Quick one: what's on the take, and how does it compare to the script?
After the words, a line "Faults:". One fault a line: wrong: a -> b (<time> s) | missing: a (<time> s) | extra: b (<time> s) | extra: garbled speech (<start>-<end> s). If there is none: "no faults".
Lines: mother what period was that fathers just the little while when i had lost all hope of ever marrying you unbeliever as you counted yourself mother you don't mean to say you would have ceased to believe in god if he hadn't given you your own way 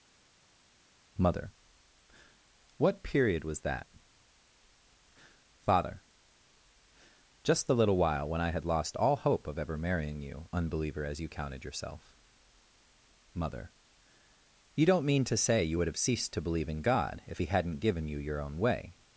mother what period was that father just the little while when i had lost all hope of ever marrying you unbeliever as you counted yourself mother you don't mean to say you would have ceased to believe in god if he hadn't given you your own way
Faults:
wrong: fathers -> father (5.6 s)